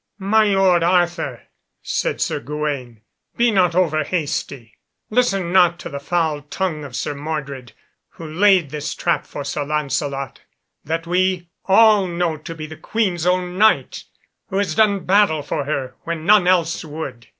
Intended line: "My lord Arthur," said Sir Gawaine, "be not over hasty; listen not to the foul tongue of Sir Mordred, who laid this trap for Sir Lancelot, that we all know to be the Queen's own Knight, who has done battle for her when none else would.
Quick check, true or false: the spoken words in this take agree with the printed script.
true